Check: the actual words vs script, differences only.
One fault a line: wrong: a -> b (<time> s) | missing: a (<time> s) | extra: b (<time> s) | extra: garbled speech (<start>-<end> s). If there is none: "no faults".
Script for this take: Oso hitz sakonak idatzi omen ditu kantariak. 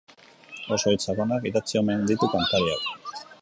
no faults